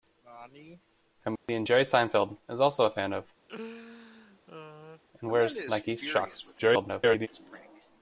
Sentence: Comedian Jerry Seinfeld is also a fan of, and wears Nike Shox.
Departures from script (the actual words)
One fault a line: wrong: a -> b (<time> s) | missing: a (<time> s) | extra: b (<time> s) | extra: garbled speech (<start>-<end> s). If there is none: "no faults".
extra: garbled speech (6.6-7.3 s)